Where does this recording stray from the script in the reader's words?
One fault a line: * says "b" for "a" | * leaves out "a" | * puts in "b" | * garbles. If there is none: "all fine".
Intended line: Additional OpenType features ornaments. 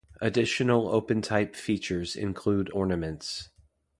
* puts in "include"